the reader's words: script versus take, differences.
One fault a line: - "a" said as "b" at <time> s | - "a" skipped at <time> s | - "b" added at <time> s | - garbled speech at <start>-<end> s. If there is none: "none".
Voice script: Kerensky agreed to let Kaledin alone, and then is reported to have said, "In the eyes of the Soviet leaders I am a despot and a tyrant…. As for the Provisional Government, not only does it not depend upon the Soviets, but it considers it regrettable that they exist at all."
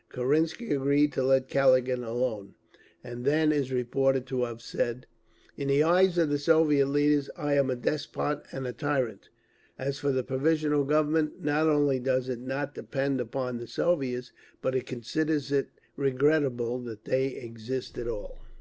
none